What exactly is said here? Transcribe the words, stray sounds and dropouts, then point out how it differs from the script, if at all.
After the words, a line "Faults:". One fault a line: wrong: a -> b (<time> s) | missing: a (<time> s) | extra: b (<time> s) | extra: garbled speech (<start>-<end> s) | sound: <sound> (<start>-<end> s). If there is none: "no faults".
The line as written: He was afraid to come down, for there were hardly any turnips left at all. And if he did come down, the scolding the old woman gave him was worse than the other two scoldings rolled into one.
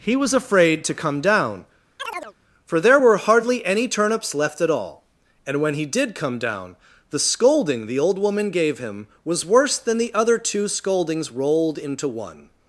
He was afraid to come down, for there were hardly any turnips left at all. And when he did come down, the scolding the old woman gave him was worse than the other two scoldings rolled into one.
Faults:
sound: chirp (2.0-2.3 s)
wrong: if -> when (5.6 s)